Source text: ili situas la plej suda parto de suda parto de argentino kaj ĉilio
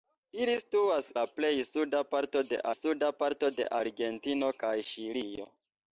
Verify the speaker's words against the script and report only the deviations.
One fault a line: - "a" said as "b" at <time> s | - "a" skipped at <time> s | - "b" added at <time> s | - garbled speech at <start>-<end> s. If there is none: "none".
none